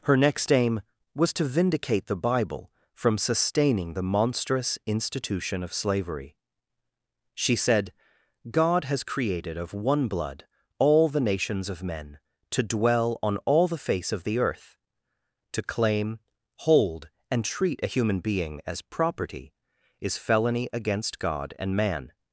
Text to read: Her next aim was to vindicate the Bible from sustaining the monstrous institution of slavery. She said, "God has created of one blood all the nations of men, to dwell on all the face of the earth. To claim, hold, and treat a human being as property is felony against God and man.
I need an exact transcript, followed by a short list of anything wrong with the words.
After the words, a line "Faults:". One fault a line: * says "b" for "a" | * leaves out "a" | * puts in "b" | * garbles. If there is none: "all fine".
Her next aim was to vindicate the Bible from sustaining the monstrous institution of slavery. She said, "God has created of one blood all the nations of men, to dwell on all the face of the earth. To claim, hold, and treat a human being as property is felony against God and man.
Faults:
all fine